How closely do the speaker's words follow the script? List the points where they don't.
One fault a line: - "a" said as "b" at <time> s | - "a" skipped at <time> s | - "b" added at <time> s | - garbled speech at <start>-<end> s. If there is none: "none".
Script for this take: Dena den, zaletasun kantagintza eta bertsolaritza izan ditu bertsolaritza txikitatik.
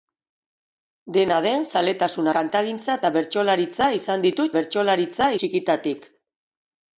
none